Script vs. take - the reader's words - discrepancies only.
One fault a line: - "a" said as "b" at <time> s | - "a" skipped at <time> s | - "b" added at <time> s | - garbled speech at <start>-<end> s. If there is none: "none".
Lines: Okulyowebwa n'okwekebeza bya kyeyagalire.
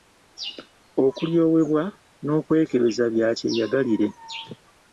none